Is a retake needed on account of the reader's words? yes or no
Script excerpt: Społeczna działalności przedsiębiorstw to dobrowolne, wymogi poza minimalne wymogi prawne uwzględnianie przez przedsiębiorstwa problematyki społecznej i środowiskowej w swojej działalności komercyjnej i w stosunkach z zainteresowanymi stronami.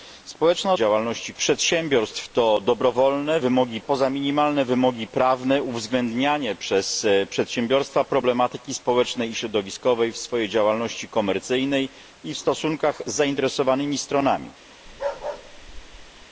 no